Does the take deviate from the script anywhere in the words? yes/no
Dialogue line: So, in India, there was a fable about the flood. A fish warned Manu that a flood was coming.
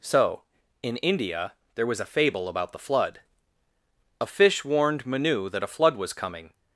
no